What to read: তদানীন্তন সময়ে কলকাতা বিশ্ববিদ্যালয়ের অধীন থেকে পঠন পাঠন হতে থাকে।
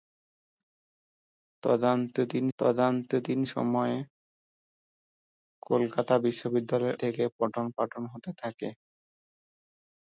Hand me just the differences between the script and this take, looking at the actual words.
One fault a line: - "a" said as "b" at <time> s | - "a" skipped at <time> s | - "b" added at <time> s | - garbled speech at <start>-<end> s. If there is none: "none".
- "তদানীন্তন" added at 2.6 s
- "অধীন" skipped at 7.0 s